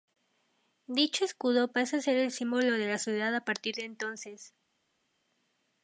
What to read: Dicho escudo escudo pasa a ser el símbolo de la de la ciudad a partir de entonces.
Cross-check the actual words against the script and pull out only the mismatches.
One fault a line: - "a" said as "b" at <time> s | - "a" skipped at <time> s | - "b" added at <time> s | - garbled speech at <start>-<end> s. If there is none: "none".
- "escudo" skipped at 1.7 s
- "de la" skipped at 3.0 s